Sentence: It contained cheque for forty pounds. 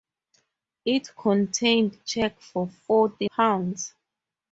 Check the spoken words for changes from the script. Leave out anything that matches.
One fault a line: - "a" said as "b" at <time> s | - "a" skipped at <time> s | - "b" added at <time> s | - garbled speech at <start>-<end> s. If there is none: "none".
none